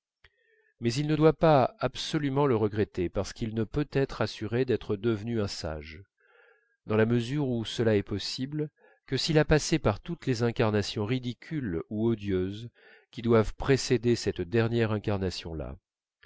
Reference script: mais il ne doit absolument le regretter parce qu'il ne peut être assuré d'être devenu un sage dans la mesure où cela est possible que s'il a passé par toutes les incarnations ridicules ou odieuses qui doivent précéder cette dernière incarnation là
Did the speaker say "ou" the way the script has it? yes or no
yes